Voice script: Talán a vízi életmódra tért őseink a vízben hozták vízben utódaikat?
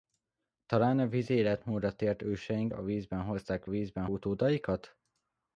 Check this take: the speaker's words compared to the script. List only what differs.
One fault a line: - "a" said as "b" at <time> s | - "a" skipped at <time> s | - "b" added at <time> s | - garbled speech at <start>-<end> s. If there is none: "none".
none